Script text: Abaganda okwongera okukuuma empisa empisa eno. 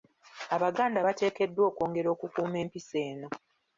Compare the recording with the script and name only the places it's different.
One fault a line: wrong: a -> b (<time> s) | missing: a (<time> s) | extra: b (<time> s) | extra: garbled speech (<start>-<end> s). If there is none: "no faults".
extra: bateekeddwa (1.0 s)
missing: empisa (3.0 s)